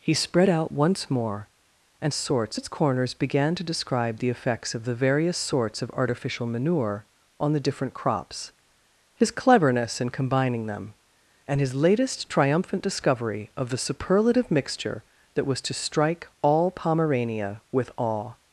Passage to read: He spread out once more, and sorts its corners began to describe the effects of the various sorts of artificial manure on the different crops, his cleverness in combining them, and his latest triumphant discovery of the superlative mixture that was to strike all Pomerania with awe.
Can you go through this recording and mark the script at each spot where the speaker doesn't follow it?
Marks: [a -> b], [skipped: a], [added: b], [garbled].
He spread out once more, and sorts its corners began to describe the effects of the various sorts of artificial manure on the different crops, his cleverness in combining them, and his latest triumphant discovery of the superlative mixture that was to strike all Pomerania with awe.